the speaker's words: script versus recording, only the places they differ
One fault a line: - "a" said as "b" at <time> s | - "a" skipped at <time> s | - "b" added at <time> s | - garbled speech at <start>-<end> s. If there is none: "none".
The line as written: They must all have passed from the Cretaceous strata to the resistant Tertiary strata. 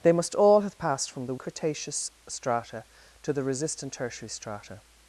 none